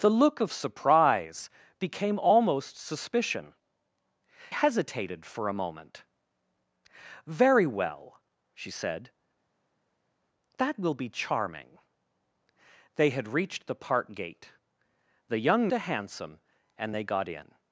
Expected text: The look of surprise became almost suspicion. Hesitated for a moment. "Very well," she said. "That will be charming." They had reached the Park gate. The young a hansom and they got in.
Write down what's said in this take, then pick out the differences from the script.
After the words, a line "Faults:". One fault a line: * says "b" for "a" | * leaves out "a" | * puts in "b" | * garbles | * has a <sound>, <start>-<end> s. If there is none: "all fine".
The look of surprise became almost suspicion. Hesitated for a moment. "Very well," she said. "That will be charming." They had reached the Park gate. The young a hansom and they got in.
Faults:
all fine